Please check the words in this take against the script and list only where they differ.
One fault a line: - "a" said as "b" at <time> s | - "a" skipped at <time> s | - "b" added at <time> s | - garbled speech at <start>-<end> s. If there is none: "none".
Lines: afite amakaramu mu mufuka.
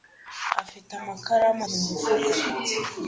none